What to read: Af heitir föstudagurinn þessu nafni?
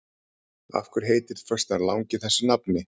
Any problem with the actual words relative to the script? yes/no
yes